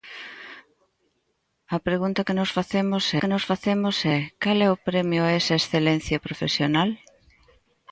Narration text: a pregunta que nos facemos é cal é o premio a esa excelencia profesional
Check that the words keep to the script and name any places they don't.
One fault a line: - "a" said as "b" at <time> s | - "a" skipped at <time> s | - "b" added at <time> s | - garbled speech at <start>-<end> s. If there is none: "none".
- "que nos facemos" added at 3.2 s